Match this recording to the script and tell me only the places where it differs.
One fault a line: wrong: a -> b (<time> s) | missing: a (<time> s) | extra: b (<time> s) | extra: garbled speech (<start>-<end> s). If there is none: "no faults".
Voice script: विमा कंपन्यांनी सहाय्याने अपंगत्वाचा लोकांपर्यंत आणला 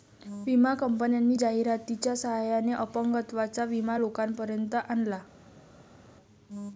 extra: जाहिरातीच्या (1.3 s)
extra: विमा (3.6 s)